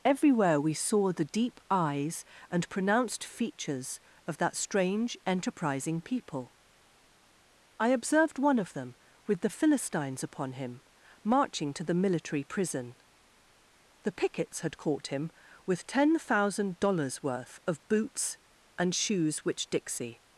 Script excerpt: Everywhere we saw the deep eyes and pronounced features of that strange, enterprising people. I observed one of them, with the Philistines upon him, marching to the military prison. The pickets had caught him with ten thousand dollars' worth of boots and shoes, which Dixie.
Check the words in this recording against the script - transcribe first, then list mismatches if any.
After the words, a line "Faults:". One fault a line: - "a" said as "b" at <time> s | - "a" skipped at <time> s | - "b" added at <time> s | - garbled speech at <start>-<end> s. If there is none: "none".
Everywhere we saw the deep eyes and pronounced features of that strange, enterprising people. I observed one of them, with the Philistines upon him, marching to the military prison. The pickets had caught him with ten thousand dollars' worth of boots and shoes, which Dixie.
Faults:
none